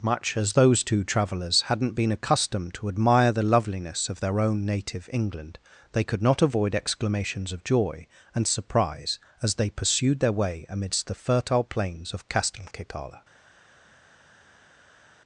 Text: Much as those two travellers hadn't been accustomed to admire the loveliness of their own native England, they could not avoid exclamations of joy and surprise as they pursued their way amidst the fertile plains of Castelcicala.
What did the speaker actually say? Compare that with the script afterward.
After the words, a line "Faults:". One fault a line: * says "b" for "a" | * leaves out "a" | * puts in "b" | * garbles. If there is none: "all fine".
Much as those two travellers hadn't been accustomed to admire the loveliness of their own native England, they could not avoid exclamations of joy and surprise as they pursued their way amidst the fertile plains of Castelcicala.
Faults:
all fine